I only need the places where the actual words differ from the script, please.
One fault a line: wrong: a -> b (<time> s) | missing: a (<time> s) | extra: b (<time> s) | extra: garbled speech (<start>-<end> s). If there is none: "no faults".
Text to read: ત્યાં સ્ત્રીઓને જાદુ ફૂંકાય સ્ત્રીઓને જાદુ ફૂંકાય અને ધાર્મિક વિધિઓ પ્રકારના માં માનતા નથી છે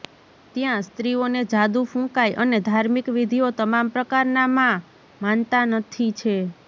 missing: સ્ત્રીઓને જાદુ ફૂંકાય (2.4 s)
extra: તમામ (3.6 s)